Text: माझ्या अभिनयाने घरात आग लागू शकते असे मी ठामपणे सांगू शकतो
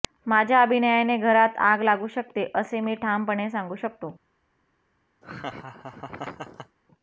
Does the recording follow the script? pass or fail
pass